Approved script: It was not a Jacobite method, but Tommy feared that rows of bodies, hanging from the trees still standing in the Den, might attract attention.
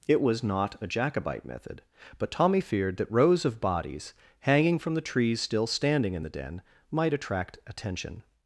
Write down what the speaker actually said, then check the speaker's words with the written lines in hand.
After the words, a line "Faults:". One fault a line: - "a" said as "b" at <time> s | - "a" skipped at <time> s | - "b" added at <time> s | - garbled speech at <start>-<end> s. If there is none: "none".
It was not a Jacobite method, but Tommy feared that rows of bodies, hanging from the trees still standing in the Den, might attract attention.
Faults:
none